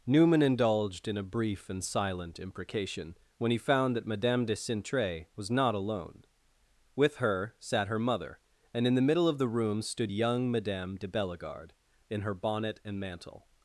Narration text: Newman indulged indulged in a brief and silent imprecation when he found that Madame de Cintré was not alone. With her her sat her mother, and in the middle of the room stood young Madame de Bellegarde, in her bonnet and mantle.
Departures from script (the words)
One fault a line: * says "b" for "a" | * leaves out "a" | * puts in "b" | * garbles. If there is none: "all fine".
* leaves out "indulged"
* leaves out "her"